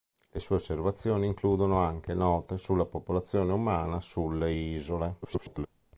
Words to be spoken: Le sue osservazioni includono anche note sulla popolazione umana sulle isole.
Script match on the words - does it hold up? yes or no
no